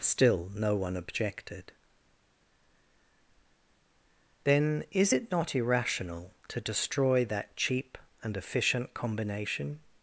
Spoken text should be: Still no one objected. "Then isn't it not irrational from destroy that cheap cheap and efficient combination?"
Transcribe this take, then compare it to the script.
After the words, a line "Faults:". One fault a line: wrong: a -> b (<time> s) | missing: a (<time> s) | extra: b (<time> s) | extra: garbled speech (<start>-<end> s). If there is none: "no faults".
Still no one objected. "Then is it not irrational to destroy that cheap and efficient combination?"
Faults:
wrong: isn't -> is (4.9 s)
wrong: from -> to (6.5 s)
missing: cheap (8.0 s)